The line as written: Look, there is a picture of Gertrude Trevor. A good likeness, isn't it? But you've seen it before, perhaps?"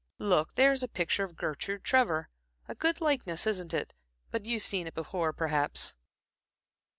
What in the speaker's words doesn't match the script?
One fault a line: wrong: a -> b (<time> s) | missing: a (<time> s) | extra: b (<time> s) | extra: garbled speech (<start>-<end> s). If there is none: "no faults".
no faults